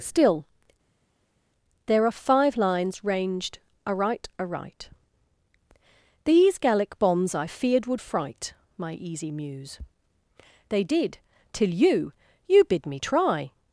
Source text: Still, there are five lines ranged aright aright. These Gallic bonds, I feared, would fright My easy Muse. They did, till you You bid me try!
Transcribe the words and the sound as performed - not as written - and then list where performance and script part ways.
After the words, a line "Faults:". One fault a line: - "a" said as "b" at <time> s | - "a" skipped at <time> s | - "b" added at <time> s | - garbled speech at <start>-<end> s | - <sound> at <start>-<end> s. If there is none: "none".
Still, there are five lines ranged aright aright. These Gallic bonds, I feared, would fright My easy Muse. They did, till you You bid me try!
Faults:
none